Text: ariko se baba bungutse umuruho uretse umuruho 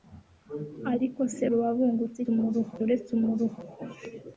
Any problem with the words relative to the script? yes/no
no